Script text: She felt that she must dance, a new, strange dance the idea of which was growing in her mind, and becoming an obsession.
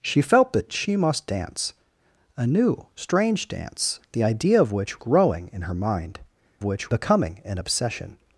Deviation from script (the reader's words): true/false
true